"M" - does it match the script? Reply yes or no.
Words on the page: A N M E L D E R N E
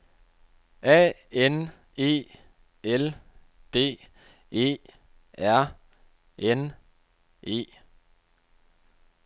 no